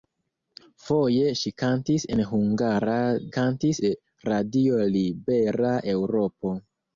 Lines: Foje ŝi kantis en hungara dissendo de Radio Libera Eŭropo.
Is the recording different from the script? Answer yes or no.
yes